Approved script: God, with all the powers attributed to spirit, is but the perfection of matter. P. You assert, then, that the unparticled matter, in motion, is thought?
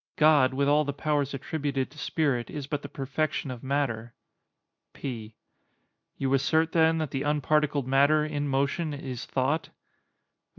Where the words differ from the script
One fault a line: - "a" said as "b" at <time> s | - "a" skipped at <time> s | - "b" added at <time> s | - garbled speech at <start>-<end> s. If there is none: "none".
none